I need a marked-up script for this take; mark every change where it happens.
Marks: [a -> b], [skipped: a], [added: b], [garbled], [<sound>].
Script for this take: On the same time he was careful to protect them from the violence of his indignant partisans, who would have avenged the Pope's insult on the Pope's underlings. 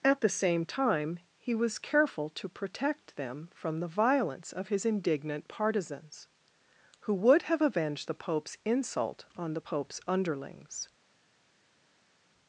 [On -> At] the same time he was careful to protect them from the violence of his indignant partisans, who would have avenged the Pope's insult on the Pope's underlings.